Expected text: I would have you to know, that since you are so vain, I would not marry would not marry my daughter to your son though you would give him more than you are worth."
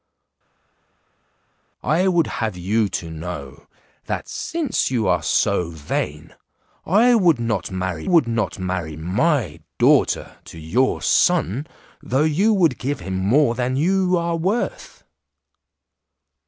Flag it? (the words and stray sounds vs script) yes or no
no